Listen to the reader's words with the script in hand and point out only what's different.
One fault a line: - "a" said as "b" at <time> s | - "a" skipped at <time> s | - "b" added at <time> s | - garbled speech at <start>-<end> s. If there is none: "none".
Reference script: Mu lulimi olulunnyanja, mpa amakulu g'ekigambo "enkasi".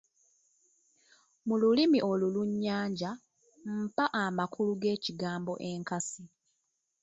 none